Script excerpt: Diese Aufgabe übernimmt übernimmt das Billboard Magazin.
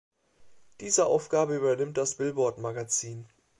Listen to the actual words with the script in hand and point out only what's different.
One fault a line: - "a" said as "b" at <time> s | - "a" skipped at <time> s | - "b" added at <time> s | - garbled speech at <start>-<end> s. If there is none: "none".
- "übernimmt" skipped at 2.0 s